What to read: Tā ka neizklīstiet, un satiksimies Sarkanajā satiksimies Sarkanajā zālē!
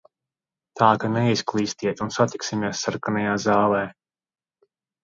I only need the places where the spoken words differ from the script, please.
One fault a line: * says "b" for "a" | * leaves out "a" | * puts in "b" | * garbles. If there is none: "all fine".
* leaves out "satiksimies Sarkanajā"